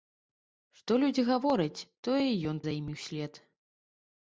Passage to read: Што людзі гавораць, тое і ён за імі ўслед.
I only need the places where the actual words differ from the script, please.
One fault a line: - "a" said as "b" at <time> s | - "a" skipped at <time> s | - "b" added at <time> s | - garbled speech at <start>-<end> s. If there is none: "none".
none